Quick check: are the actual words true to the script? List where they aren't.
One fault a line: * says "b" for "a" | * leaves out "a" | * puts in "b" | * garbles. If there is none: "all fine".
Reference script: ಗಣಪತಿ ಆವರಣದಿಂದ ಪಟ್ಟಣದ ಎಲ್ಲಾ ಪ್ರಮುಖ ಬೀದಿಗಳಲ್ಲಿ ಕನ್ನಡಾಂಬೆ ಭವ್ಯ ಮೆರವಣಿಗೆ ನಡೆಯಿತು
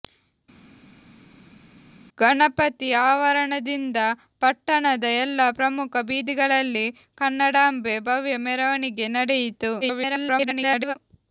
* garbles